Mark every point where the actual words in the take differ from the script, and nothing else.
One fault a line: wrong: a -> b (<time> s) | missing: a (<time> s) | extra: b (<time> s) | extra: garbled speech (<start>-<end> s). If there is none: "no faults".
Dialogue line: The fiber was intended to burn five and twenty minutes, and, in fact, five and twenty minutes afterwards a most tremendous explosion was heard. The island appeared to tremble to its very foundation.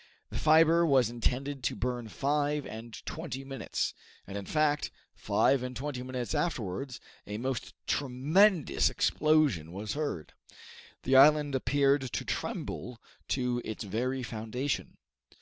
no faults